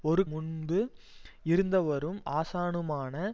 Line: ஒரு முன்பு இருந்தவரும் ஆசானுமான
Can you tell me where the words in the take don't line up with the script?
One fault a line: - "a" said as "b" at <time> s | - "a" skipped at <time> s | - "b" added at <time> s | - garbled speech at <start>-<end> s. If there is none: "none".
none